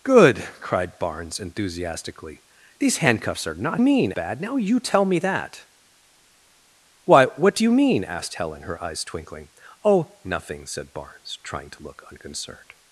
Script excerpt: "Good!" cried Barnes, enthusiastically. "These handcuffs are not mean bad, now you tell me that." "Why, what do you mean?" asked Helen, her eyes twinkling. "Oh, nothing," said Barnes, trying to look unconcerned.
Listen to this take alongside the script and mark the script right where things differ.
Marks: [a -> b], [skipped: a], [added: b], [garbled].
"Good!" cried Barnes, enthusiastically. "These handcuffs are not mean bad, now you tell me that." "Why, what do you mean?" asked Helen, her eyes twinkling. "Oh, nothing," said Barnes, trying to look unconcerned.